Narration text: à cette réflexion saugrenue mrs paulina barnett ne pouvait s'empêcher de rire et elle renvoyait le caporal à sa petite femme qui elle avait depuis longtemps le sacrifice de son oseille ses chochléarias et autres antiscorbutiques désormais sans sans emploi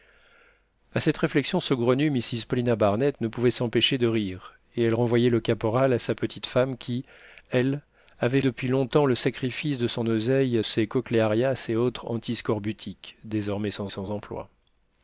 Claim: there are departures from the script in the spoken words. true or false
false